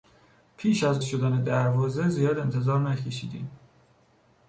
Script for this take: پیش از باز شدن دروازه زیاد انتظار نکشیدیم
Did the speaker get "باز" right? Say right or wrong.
wrong